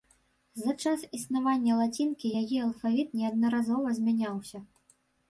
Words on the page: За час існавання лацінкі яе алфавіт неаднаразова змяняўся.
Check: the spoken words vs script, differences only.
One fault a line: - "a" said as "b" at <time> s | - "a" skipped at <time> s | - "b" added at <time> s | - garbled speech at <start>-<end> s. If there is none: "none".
none